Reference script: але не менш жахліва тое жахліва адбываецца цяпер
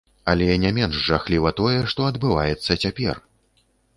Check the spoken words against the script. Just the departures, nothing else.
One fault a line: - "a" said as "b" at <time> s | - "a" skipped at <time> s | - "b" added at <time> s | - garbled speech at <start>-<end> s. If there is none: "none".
- "жахліва" said as "што" at 1.9 s